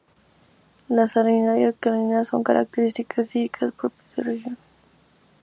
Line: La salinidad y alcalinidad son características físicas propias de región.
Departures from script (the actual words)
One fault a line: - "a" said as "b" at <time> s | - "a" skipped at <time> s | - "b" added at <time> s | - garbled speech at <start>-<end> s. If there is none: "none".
none